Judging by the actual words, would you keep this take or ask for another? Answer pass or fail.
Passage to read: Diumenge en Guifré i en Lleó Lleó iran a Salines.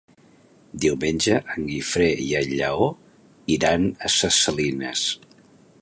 fail